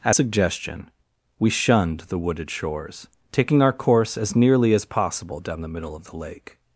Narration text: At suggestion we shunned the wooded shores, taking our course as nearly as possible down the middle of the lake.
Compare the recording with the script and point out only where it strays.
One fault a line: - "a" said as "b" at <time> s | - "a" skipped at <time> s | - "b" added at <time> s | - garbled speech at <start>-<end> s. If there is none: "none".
none